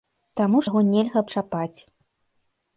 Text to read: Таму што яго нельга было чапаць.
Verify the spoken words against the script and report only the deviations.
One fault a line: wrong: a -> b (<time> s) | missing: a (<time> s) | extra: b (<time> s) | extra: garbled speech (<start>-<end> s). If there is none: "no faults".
missing: што (0.6 s)
missing: было (1.2 s)